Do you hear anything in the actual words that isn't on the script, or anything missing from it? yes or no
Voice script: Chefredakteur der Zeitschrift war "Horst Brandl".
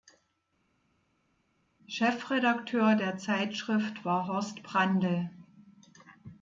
no